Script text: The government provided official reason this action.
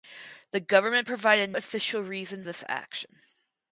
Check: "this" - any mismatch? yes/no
no